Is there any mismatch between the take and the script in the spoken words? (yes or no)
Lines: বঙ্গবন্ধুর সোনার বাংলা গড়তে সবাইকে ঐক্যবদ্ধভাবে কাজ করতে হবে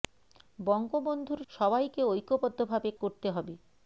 yes